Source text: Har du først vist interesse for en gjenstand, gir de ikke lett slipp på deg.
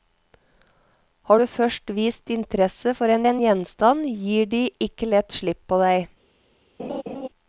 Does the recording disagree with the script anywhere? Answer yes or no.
yes